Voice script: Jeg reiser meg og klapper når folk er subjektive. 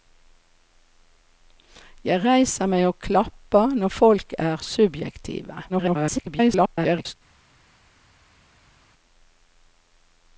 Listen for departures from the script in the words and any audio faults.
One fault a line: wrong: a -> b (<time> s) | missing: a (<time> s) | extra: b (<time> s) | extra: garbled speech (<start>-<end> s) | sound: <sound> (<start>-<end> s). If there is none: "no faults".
extra: garbled speech (5.7-7.1 s)